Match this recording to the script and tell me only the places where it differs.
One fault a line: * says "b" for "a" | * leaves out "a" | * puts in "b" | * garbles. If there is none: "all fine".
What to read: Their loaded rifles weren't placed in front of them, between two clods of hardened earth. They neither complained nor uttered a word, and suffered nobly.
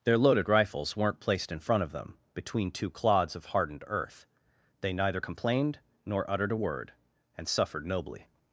all fine